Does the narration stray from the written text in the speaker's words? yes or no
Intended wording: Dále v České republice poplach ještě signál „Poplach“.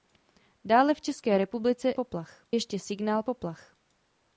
no